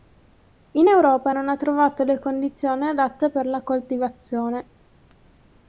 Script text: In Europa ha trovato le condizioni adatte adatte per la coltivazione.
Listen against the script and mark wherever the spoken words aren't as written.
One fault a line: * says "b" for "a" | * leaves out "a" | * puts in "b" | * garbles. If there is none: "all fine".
* puts in "non"
* leaves out "adatte"